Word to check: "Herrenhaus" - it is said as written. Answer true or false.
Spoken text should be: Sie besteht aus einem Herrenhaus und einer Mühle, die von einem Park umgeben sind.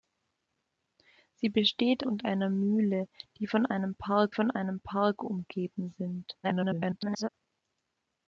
false